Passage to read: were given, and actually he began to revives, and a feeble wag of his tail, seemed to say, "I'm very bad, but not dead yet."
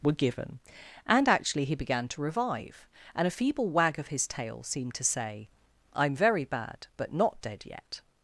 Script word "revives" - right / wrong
wrong